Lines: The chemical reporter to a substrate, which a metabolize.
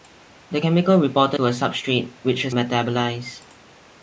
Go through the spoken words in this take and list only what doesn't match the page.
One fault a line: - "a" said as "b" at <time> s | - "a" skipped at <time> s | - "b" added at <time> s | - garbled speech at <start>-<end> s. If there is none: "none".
none